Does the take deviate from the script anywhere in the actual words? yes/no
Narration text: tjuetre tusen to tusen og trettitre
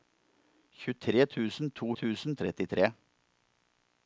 no